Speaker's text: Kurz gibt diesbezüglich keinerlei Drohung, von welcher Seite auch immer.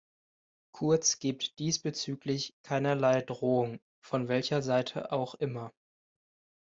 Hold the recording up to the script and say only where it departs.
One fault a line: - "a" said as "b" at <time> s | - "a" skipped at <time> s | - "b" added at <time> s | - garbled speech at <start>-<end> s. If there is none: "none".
none